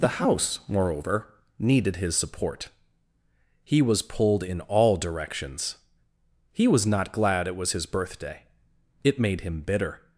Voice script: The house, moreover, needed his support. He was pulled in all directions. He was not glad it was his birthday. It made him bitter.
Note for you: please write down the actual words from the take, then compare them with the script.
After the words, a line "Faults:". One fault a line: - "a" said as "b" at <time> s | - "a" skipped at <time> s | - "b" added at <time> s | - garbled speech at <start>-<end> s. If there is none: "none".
The house, moreover, needed his support. He was pulled in all directions. He was not glad it was his birthday. It made him bitter.
Faults:
none